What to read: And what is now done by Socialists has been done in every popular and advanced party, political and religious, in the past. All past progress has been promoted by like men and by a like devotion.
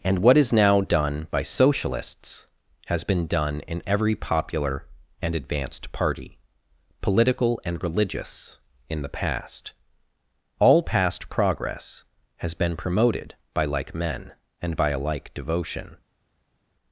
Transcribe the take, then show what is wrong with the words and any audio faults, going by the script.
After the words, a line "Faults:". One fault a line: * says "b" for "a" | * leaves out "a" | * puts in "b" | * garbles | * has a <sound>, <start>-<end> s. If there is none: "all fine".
And what is now done by Socialists has been done in every popular and advanced party, political and religious, in the past. All past progress has been promoted by like men and by a like devotion.
Faults:
all fine